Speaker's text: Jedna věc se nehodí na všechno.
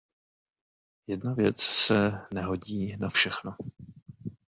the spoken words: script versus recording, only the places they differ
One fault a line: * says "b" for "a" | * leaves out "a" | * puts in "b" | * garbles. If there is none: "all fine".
all fine